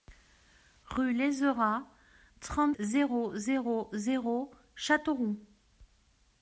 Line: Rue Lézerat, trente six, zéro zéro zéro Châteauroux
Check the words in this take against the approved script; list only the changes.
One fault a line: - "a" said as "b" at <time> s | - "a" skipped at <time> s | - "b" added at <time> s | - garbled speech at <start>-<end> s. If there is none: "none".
- "six" skipped at 2.8 s